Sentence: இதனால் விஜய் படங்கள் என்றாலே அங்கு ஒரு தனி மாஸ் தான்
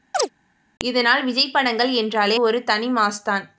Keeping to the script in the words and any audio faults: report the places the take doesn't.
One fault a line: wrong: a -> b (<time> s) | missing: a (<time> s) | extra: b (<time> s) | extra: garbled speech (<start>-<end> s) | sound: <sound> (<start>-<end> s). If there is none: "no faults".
sound: chirp (0.1-0.3 s)
missing: அங்கு (2.4 s)